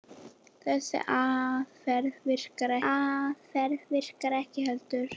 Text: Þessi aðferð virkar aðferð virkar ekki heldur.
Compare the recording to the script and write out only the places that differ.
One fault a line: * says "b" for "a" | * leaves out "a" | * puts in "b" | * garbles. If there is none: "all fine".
all fine